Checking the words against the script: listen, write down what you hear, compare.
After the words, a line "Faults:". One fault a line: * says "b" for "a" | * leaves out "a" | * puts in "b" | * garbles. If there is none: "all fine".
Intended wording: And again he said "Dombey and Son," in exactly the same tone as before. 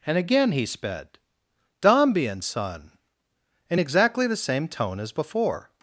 And again he sped "Dombey and Son," in exactly the same tone as before.
Faults:
* says "sped" for "said"